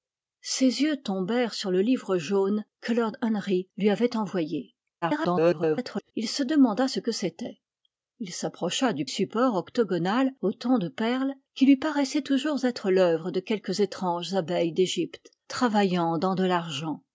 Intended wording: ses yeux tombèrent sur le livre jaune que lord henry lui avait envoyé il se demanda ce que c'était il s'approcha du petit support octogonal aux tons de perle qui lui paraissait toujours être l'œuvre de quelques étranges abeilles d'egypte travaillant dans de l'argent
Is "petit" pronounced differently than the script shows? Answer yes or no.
yes